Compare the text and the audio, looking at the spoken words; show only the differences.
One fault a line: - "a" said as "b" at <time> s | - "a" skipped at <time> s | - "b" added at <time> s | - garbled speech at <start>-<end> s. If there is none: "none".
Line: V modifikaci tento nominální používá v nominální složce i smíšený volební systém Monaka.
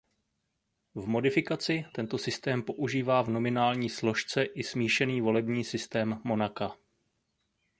- "nominální" said as "systém" at 2.2 s